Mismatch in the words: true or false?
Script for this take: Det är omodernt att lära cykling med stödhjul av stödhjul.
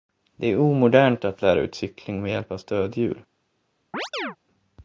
true